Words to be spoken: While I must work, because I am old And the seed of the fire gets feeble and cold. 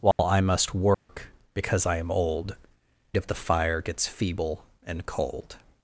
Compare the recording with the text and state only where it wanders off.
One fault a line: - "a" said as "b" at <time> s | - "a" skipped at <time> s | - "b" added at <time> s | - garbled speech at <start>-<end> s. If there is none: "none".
- "And the seed" skipped at 2.5 s